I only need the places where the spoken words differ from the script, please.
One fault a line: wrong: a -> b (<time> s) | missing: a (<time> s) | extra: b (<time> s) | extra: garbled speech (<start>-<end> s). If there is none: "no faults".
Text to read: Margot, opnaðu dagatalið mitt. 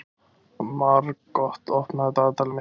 no faults